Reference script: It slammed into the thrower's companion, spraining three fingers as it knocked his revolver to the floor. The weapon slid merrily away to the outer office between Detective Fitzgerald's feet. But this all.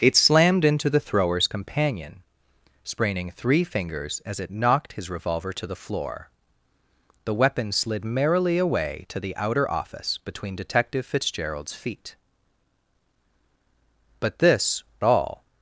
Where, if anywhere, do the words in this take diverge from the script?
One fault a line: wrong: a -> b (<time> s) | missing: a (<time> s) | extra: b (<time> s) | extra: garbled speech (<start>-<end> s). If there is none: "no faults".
no faults